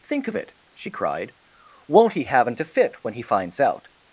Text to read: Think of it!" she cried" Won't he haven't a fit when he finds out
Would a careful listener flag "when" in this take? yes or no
no